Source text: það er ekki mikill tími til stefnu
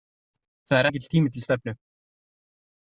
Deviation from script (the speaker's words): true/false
true